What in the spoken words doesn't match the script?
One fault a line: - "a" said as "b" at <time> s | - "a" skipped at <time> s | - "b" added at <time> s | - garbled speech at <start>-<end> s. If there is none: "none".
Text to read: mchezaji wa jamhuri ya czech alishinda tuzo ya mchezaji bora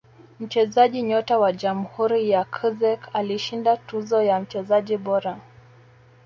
- "nyota" added at 1.0 s